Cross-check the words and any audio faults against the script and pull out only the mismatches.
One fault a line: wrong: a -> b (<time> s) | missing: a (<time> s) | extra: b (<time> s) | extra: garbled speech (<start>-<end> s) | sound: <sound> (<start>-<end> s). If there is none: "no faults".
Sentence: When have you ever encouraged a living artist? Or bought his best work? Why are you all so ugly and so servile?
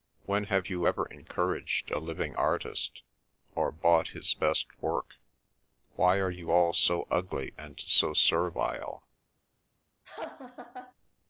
sound: laugh (10.0-10.9 s)